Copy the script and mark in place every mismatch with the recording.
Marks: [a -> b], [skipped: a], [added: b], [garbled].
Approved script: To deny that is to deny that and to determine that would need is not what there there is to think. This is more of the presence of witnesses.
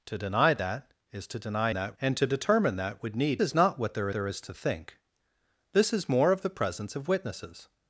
To deny that is to deny that and to determine that would need is not what there there is to think. This is more of the presence of witnesses.